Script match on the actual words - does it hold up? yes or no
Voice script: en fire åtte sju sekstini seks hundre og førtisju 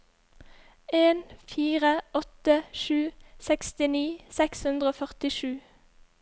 yes